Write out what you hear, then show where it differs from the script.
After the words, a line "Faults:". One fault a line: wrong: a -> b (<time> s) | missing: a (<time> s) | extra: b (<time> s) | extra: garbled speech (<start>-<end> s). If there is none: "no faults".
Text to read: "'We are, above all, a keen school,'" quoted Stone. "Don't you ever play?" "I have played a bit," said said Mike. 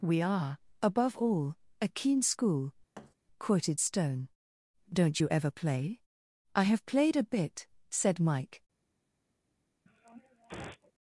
"'We are, above all, a keen school,'" quoted Stone. "Don't you ever play?" "I have played a bit," said Mike.
Faults:
missing: said (8.2 s)